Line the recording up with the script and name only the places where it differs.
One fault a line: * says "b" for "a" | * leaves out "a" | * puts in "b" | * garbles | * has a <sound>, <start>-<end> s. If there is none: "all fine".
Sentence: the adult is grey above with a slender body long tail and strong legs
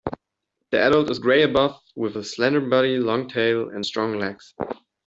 all fine